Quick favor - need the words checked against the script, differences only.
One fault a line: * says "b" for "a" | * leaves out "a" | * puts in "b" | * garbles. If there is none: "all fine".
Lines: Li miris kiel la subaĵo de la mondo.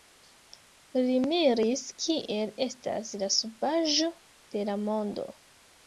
* puts in "estas"